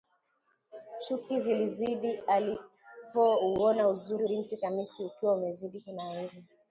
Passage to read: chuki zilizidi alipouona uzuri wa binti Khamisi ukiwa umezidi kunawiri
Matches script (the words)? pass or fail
fail